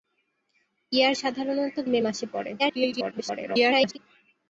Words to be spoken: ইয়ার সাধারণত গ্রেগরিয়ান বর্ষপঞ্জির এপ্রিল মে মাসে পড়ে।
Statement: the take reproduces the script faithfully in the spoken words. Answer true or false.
false